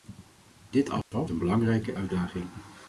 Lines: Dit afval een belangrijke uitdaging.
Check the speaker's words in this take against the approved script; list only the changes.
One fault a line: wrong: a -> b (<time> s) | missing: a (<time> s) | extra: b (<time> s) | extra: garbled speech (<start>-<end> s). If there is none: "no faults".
no faults